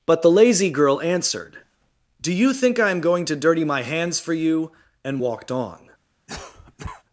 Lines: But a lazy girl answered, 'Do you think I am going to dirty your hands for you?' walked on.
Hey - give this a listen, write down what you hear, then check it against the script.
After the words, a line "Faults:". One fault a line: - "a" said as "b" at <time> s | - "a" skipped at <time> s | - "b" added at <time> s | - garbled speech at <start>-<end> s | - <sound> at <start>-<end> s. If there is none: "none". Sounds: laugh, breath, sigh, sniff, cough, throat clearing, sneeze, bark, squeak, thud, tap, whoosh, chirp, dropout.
But the lazy girl answered, 'Do you think I am going to dirty my hands for you?' and walked on.
Faults:
- "a" said as "the" at 0.2 s
- "your" said as "my" at 3.6 s
- "and" added at 5.0 s
- cough at 6.3-7.0 s